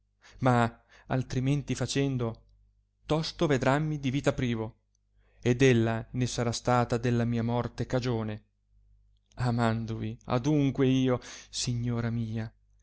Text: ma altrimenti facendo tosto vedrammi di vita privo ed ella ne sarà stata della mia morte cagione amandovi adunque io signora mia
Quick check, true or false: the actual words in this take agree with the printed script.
true